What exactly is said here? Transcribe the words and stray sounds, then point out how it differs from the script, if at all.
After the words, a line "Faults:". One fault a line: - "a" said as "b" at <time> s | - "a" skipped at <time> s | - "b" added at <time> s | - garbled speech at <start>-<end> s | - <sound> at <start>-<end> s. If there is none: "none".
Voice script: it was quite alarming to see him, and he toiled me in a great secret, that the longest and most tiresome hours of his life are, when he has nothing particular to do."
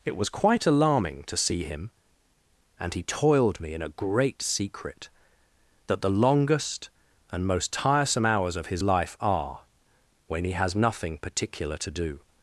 it was quite alarming to see him, and he toiled me in a great secret, that the longest and most tiresome hours of his life are, when he has nothing particular to do."
Faults:
none